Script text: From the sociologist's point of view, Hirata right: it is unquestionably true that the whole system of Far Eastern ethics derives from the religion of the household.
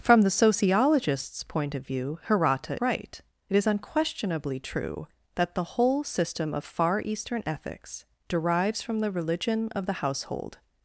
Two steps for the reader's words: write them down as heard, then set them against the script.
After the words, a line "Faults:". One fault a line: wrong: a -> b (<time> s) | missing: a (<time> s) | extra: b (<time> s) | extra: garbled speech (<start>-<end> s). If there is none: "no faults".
From the sociologist's point of view, Hirata right: it is unquestionably true that the whole system of Far Eastern ethics derives from the religion of the household.
Faults:
no faults